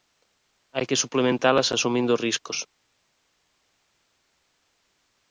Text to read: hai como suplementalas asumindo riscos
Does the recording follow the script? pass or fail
fail